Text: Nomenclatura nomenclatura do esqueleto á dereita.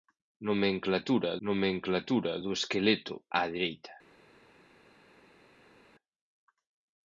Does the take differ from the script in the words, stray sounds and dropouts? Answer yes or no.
no